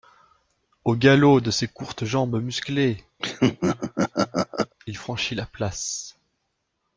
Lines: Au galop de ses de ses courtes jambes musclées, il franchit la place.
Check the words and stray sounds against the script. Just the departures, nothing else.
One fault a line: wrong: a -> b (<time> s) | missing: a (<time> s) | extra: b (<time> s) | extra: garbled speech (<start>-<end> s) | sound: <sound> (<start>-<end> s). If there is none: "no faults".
missing: de ses (1.7 s)
sound: laugh (3.2-4.7 s)